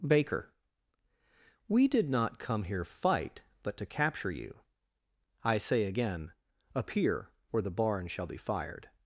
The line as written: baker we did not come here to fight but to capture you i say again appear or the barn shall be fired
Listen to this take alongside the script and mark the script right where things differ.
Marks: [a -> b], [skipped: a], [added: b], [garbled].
baker we did not come here [skipped: to] fight but to capture you i say again appear or the barn shall be fired